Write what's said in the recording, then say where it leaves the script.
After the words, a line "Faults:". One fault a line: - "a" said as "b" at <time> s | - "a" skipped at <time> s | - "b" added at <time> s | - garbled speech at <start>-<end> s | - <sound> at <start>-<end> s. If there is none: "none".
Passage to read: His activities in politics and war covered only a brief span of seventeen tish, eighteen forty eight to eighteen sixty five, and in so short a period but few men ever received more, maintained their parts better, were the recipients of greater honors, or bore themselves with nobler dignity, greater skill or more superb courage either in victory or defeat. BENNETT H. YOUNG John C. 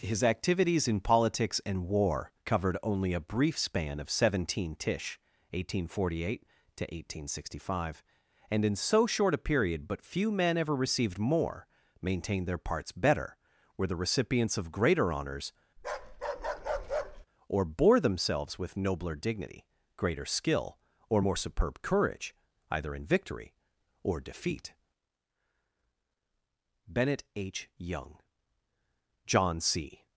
His activities in politics and war covered only a brief span of seventeen tish, eighteen forty eight to eighteen sixty five, and in so short a period but few men ever received more, maintained their parts better, were the recipients of greater honors, or bore themselves with nobler dignity, greater skill or more superb courage either in victory or defeat. BENNETT H. YOUNG John C.
Faults:
- bark at 15.8-17.3 s